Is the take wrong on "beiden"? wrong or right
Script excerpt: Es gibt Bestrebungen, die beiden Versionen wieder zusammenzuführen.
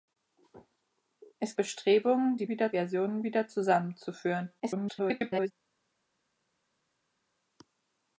wrong